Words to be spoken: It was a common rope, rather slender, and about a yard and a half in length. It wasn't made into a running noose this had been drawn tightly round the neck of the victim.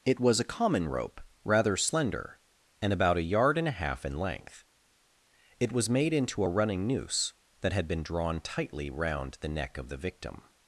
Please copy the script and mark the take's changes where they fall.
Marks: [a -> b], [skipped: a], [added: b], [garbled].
It was a common rope, rather slender, and about a yard and a half in length. It [wasn't -> was] made into a running noose [this -> that] had been drawn tightly round the neck of the victim.